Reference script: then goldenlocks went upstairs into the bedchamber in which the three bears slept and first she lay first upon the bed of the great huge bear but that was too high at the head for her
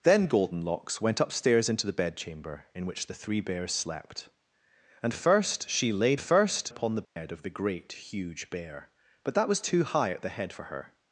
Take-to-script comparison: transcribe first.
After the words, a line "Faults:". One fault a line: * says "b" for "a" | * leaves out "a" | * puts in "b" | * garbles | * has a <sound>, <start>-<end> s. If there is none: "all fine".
then goldenlocks went upstairs into the bedchamber in which the three bears slept and first she lay first upon the bed of the great huge bear but that was too high at the head for her
Faults:
* has a dropout, 7.0-7.2 s